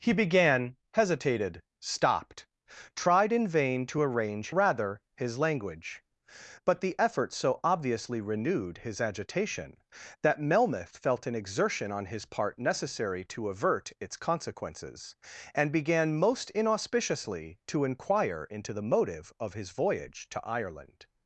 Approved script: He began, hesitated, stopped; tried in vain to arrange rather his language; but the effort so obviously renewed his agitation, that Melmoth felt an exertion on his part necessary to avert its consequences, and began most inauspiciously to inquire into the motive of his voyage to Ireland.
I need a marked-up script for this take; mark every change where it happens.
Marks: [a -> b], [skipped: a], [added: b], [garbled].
He began, hesitated, stopped; tried in vain to arrange rather his language; but the effort so obviously renewed his agitation, that Melmoth felt an exertion on his part necessary to avert its consequences, and began most inauspiciously to inquire into the motive of his voyage to Ireland.